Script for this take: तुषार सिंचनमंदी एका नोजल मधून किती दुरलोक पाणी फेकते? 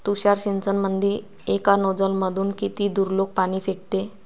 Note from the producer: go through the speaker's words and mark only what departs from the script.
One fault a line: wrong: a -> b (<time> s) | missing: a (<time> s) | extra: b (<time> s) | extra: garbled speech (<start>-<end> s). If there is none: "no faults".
no faults